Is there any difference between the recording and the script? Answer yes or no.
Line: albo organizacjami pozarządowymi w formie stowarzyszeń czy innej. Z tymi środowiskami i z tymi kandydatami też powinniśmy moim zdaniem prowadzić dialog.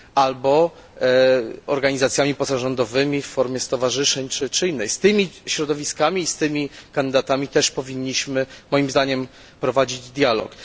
no